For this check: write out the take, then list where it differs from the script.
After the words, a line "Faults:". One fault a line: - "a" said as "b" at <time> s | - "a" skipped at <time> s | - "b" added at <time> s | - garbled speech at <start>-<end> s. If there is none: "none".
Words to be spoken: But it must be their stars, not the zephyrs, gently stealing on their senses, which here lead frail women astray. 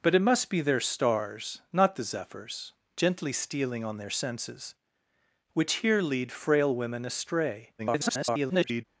But it must be their stars, not the zephyrs, gently stealing on their senses, which here lead frail women astray. [garbled]
Faults:
- garbled speech at 7.8-8.8 s